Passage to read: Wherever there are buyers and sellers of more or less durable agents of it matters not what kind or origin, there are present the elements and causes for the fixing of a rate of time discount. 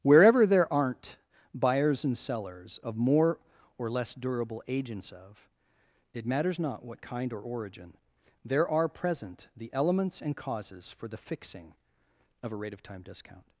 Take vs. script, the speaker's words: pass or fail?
fail